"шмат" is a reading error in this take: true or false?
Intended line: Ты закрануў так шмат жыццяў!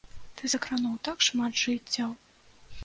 false